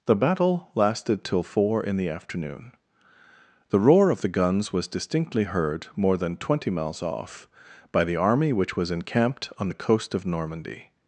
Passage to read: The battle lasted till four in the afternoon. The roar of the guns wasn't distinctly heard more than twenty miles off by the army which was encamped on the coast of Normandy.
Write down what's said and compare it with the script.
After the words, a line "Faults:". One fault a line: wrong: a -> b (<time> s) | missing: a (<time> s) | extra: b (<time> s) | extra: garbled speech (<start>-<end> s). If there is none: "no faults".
The battle lasted till four in the afternoon. The roar of the guns was distinctly heard more than twenty miles off by the army which was encamped on the coast of Normandy.
Faults:
wrong: wasn't -> was (4.7 s)